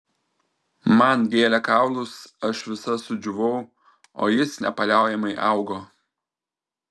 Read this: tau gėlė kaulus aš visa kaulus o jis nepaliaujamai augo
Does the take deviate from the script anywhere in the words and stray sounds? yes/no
yes